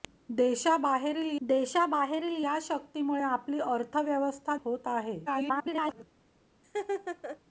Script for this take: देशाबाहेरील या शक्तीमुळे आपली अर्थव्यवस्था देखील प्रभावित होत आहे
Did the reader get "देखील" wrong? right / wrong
wrong